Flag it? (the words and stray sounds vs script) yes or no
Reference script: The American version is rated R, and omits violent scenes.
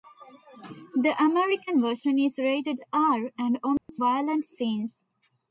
yes